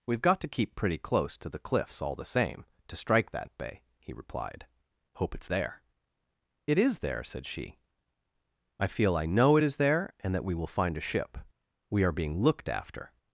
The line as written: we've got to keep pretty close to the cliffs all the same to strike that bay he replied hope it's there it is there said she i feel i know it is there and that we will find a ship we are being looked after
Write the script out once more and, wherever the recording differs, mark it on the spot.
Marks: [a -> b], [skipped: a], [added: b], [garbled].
we've got to keep pretty close to the cliffs all the same to strike that bay he replied hope it's there it is there said she i feel i know it is there and that we will find a ship we are being looked after